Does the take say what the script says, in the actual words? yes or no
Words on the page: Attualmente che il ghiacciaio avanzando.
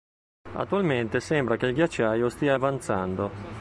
no